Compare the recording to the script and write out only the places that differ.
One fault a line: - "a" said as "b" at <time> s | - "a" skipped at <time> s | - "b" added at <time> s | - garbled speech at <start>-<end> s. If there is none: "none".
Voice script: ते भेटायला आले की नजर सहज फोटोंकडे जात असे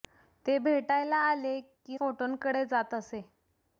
- "नजर सहज" skipped at 2.0 s